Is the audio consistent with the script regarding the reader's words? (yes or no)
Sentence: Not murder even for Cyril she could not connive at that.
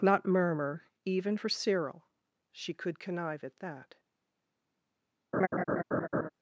no